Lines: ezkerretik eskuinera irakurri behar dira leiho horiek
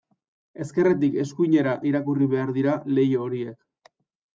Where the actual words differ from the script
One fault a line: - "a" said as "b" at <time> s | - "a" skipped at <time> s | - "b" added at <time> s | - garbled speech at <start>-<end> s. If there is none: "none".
none